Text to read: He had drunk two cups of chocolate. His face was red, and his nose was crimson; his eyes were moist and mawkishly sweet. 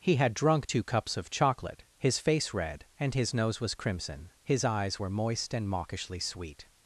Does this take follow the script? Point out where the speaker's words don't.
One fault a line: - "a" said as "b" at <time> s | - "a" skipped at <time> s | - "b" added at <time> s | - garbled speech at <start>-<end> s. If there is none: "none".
- "was" skipped at 2.5 s